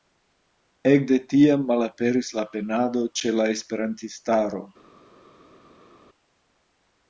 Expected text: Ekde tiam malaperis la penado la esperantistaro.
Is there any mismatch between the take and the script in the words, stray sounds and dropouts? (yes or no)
yes